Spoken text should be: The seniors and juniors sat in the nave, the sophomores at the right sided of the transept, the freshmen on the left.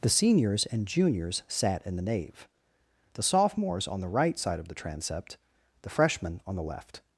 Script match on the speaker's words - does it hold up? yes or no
no